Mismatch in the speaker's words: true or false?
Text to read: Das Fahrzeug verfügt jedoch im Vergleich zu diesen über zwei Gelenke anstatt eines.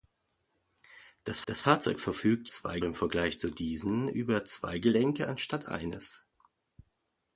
true